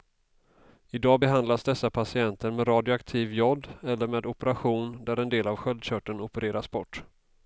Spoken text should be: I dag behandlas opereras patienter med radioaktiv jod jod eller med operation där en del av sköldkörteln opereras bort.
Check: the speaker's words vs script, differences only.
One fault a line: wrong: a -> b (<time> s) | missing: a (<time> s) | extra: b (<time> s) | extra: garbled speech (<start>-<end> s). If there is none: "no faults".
wrong: opereras -> dessa (1.6 s)
missing: jod (3.7 s)